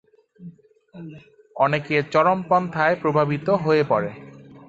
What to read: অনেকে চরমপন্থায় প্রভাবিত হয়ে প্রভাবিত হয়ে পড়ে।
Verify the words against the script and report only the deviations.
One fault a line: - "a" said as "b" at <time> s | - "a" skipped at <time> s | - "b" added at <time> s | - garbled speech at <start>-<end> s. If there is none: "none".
- "প্রভাবিত হয়ে" skipped at 3.8 s